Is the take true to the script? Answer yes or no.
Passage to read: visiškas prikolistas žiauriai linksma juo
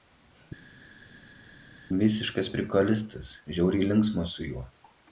no